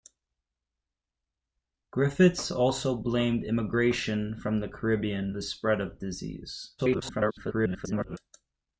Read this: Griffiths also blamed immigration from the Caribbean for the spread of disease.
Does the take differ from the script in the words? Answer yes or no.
yes